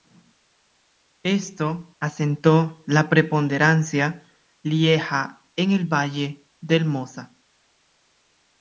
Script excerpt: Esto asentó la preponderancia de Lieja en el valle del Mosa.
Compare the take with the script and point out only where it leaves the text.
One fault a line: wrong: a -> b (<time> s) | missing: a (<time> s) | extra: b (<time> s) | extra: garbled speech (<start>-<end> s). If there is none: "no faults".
missing: de (4.2 s)